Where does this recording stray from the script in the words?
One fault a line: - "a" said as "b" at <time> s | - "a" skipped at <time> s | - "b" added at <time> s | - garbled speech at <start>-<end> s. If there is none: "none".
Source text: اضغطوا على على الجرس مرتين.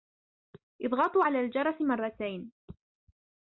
- "على" skipped at 1.4 s